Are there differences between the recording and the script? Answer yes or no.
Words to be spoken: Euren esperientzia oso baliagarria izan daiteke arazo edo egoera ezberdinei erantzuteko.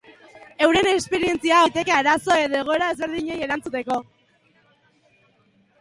yes